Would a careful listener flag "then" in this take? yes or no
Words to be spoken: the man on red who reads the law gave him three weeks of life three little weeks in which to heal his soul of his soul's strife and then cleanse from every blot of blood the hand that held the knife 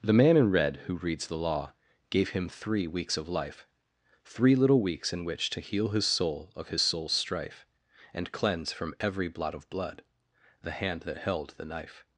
yes